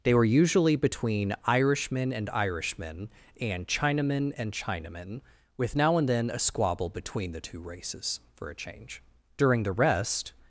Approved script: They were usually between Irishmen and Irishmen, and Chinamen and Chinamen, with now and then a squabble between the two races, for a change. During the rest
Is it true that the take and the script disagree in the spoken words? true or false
false